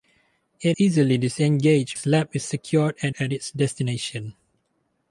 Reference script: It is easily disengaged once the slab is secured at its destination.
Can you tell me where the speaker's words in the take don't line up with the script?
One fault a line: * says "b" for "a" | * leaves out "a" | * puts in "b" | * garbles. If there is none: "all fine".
* leaves out "is"
* leaves out "once the"
* puts in "at"